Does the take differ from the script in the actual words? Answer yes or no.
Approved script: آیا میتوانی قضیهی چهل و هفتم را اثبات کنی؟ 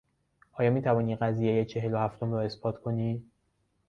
no